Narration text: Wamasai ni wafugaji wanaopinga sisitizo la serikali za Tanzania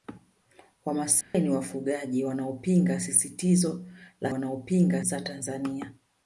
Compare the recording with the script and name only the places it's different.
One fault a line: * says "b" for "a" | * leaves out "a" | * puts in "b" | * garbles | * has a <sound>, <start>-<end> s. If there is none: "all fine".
* has a dropout, 1.2-1.3 s
* says "wanaopinga" for "serikali"